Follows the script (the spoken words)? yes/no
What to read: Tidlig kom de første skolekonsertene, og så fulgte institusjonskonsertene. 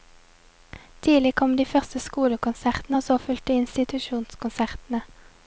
yes